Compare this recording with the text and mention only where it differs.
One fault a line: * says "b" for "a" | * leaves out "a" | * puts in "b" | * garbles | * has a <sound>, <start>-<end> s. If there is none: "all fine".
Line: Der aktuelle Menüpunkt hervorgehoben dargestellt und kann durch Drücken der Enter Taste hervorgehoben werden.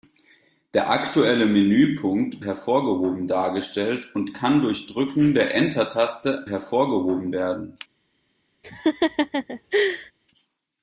* has a laugh, 8.6-10.1 s